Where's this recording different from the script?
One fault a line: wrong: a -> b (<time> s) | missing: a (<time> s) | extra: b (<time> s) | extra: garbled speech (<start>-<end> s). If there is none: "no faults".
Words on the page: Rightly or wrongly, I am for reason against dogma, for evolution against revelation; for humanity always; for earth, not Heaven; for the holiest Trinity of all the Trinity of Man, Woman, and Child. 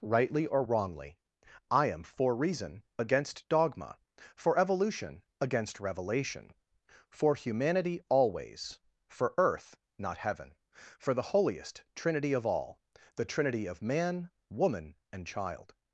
no faults